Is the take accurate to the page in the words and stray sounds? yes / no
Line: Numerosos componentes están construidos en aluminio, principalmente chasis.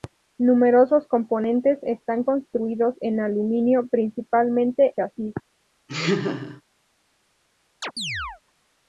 no